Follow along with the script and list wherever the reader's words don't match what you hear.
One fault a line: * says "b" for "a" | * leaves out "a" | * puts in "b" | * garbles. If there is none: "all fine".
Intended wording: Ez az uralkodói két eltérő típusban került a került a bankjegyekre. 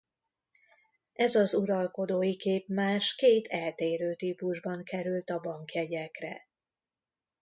* puts in "képmás"
* leaves out "került a"